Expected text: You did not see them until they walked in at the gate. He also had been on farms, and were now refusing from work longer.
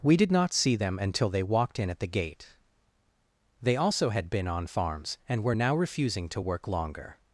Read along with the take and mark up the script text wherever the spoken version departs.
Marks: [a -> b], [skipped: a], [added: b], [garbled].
[You -> We] did not see them until they walked in at the gate. [He -> They] also had been on farms, and were now refusing [from -> to] work longer.